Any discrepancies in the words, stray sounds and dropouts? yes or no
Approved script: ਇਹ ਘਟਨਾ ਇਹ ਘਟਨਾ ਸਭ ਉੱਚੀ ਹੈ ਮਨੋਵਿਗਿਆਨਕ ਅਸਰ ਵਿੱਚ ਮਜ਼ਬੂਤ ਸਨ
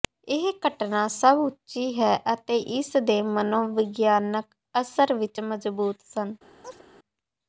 yes